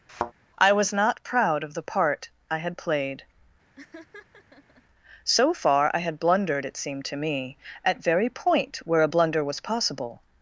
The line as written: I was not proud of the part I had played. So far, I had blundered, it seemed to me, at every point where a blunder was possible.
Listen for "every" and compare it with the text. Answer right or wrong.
wrong